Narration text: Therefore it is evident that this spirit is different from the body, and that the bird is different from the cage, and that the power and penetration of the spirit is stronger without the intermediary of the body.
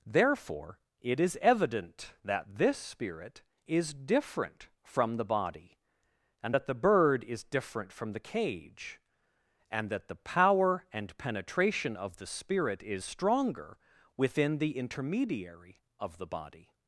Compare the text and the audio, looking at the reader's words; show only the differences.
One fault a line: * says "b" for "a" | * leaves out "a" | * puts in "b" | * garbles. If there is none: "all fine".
* says "within" for "without"